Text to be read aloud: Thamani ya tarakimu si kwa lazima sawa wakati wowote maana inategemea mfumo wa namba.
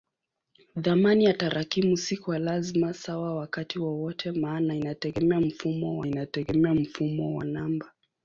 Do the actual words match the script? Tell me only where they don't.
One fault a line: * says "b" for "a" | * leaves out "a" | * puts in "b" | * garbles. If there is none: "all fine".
* puts in "inategemea mfumo wa"